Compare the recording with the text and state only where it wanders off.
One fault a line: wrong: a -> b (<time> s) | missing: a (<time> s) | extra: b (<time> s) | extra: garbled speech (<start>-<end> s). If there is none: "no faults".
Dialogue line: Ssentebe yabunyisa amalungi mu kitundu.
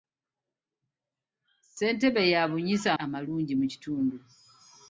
no faults